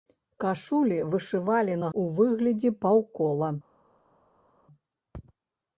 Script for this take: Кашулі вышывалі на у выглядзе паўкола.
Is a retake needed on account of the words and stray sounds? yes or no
no